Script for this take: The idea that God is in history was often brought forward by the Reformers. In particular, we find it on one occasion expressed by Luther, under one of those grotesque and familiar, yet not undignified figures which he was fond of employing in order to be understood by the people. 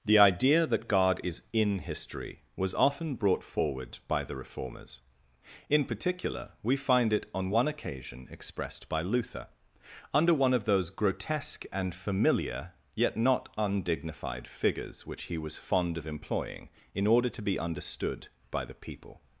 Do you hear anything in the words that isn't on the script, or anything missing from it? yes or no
no